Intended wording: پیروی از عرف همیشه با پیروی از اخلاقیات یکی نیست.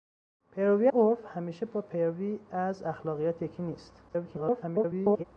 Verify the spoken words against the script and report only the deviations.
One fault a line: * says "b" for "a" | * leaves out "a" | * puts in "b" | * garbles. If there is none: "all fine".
* leaves out "از"
* garbles